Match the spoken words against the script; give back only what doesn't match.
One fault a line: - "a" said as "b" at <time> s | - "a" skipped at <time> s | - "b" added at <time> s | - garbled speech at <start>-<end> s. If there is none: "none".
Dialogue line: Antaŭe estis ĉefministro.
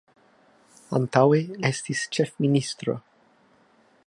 none